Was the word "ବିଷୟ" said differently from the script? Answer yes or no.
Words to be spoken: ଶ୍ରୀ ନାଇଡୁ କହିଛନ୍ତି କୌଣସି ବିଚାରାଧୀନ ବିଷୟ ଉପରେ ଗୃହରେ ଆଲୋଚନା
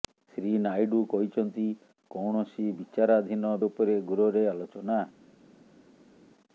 yes